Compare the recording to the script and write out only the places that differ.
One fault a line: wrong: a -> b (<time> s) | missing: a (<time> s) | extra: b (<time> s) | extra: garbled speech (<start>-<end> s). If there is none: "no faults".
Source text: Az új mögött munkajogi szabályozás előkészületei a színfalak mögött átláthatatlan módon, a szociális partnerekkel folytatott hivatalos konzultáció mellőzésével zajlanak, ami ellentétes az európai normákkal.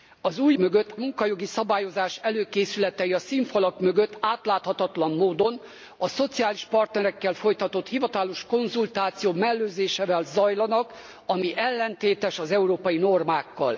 no faults